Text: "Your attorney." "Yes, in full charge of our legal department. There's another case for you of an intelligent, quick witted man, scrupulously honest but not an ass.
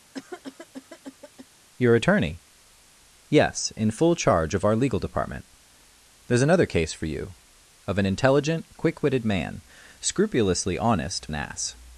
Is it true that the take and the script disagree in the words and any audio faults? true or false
true